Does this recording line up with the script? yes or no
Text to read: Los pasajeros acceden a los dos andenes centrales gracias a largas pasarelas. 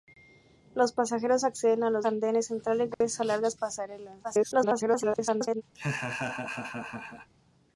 no